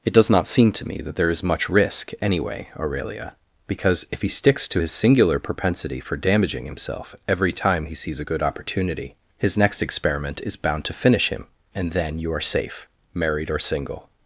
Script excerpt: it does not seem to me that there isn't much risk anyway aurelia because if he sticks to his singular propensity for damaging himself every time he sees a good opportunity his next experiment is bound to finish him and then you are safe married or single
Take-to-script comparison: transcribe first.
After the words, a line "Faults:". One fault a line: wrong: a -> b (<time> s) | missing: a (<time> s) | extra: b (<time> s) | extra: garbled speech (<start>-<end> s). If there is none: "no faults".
it does not seem to me that there is much risk anyway aurelia because if he sticks to his singular propensity for damaging himself every time he sees a good opportunity his next experiment is bound to finish him and then you are safe married or single
Faults:
wrong: isn't -> is (1.3 s)